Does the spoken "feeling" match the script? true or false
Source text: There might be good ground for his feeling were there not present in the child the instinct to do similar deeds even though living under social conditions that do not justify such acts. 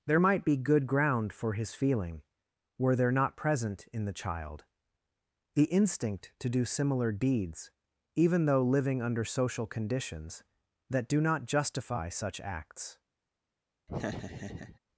true